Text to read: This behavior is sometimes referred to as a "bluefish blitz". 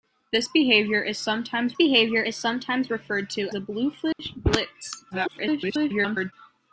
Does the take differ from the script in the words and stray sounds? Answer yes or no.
yes